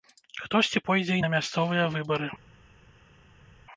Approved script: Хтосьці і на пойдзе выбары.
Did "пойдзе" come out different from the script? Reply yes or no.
yes